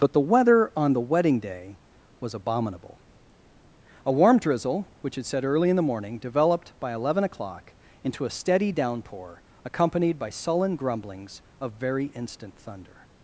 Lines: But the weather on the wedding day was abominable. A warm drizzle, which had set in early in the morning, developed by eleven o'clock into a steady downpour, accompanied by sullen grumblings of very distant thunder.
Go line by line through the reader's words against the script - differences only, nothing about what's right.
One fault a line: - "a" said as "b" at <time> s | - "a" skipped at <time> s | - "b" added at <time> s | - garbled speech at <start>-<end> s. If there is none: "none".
- "in" skipped at 5.5 s
- "distant" said as "instant" at 12.1 s